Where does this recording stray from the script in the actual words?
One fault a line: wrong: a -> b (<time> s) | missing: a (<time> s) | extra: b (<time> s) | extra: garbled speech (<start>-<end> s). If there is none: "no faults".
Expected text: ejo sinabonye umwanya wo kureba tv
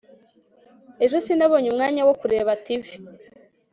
no faults